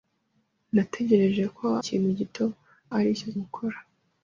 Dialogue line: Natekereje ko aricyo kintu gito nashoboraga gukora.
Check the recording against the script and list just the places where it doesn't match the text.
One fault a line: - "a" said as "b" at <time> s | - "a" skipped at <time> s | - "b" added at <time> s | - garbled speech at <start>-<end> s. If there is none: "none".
- "aricyo" skipped at 1.7 s
- "nashoboraga" said as "aricyo" at 3.0 s